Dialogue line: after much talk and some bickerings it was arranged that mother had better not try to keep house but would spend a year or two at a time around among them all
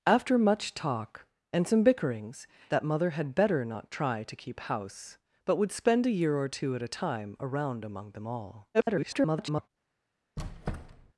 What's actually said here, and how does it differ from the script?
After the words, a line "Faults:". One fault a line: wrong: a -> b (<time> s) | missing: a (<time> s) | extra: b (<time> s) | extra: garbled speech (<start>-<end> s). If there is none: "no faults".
after much talk and some bickerings that mother had better not try to keep house but would spend a year or two at a time around among them all [garbled]
Faults:
missing: it was arranged (2.5 s)
extra: garbled speech (8.7-9.7 s)